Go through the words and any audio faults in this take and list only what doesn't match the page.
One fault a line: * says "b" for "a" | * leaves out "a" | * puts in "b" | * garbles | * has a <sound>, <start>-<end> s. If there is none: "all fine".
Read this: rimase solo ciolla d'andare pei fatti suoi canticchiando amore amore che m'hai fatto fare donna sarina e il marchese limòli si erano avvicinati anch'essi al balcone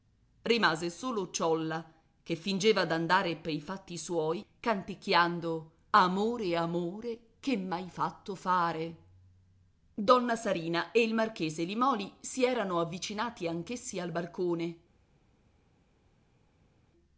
* puts in "che fingeva"